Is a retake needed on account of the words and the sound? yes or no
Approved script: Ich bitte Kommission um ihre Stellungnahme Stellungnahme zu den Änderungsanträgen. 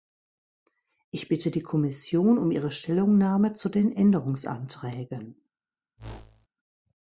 yes